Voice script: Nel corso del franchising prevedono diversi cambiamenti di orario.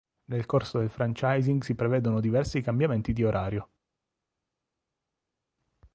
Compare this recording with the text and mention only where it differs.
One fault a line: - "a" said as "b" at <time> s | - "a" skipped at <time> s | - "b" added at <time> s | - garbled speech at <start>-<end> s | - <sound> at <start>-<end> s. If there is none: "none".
- "si" added at 1.6 s